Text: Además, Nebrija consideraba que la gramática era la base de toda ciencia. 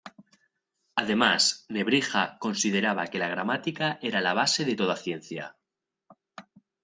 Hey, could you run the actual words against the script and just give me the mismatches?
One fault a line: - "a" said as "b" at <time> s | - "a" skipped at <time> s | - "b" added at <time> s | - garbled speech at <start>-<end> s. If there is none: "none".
none